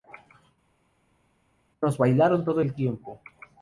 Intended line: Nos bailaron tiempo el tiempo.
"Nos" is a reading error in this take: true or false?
false